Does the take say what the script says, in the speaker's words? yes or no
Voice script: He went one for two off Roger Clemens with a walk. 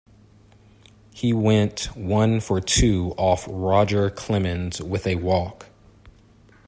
yes